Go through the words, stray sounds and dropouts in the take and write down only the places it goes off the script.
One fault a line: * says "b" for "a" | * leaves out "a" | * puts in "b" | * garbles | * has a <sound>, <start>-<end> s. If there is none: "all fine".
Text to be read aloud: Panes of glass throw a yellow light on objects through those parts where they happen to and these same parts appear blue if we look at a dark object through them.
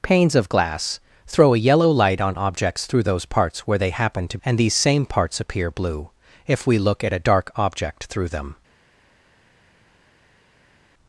all fine